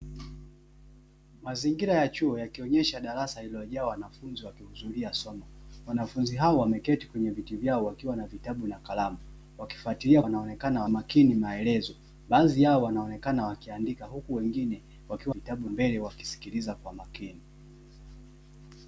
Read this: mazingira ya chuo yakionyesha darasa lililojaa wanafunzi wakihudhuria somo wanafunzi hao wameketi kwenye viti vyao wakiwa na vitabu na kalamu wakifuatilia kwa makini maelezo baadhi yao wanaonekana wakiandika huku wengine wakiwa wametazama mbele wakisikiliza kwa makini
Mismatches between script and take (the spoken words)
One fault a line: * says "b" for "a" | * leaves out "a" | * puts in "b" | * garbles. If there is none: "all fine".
* says "wanaonekana" for "kwa"
* says "vitabu" for "wametazama"